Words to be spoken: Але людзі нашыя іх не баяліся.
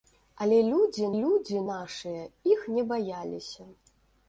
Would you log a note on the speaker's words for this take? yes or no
yes